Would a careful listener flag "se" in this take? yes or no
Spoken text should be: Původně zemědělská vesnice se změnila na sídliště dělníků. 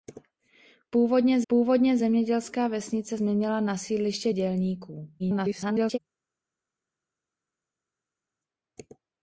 yes